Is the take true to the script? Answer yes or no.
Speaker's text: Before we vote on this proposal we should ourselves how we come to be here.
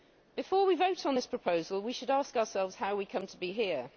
no